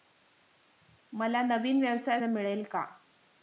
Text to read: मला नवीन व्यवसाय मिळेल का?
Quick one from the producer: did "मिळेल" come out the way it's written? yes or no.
yes